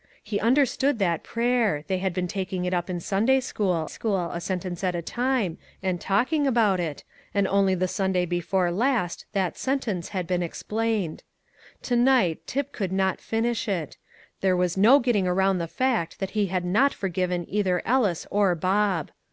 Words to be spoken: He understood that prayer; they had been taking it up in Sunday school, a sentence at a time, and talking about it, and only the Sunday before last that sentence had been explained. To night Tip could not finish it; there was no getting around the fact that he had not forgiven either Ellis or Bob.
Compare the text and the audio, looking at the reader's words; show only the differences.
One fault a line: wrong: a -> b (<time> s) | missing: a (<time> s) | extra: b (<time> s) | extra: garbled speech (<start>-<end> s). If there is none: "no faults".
extra: school (3.9 s)